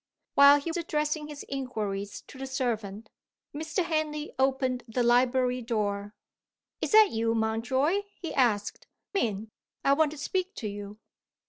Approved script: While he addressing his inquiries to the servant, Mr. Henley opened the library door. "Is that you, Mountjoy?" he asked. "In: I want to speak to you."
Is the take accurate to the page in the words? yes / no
yes